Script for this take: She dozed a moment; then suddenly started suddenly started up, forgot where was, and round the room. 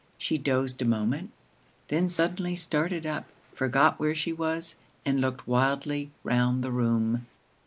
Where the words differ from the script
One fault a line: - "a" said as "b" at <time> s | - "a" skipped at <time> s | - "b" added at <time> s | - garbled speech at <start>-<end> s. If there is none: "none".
- "suddenly started" skipped at 3.0 s
- "she" added at 4.2 s
- "looked wildly" added at 5.2 s